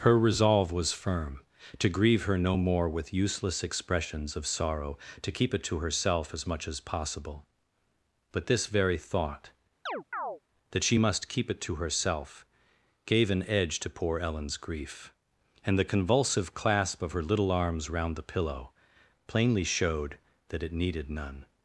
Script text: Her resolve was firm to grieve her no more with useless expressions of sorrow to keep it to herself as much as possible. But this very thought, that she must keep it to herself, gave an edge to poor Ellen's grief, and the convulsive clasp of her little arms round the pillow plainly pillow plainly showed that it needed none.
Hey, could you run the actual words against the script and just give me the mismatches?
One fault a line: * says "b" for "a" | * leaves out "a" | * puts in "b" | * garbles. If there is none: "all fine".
* leaves out "pillow plainly"